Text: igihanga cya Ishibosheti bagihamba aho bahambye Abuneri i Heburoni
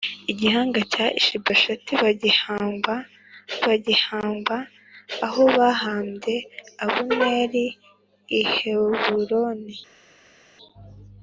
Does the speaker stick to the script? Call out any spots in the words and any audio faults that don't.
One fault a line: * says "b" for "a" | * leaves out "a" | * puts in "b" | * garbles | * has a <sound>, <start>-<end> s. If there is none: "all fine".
* puts in "bagihamba"